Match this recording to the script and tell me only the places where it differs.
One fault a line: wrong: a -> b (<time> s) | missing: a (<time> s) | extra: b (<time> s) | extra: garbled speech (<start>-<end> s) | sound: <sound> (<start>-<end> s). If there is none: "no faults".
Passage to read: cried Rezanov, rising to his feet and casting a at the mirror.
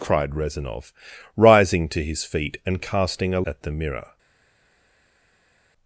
no faults